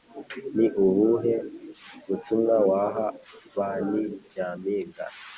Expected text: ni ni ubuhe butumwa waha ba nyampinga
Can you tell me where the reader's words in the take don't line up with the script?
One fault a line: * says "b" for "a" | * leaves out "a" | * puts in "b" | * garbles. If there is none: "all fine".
* leaves out "ni"
* puts in "ni"